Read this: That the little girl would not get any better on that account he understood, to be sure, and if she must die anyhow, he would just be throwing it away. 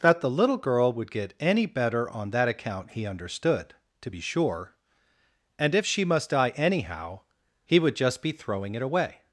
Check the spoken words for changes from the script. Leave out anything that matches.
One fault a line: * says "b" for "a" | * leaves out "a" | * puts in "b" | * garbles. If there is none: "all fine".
* leaves out "not"